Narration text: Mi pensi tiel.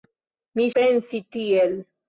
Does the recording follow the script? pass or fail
pass